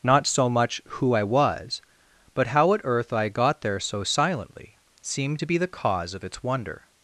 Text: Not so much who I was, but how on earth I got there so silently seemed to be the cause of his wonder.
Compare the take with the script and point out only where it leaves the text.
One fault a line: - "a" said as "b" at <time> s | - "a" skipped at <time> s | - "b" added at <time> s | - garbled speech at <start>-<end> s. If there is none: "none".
- "on" said as "at" at 2.7 s
- "his" said as "its" at 6.2 s